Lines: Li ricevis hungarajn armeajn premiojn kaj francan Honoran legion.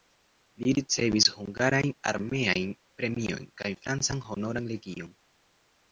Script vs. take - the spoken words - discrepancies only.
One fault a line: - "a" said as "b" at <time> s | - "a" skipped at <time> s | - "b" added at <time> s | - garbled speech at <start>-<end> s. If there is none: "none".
none